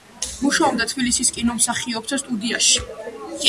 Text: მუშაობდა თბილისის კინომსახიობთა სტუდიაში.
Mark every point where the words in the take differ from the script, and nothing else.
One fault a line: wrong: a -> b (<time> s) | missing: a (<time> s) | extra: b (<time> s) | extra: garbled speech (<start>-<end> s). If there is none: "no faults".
no faults